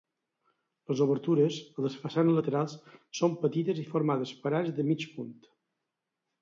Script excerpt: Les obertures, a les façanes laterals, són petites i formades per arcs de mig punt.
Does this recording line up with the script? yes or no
yes